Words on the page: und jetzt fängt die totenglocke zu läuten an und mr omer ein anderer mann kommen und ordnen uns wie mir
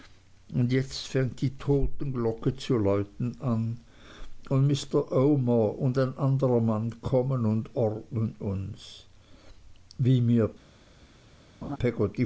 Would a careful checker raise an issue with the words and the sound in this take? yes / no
yes